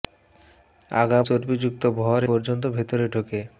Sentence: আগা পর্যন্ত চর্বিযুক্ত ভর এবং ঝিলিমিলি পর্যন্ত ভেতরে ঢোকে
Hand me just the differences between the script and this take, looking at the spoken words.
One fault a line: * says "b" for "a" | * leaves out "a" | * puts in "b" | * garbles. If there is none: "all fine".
* leaves out "পর্যন্ত"
* leaves out "এবং ঝিলিমিলি"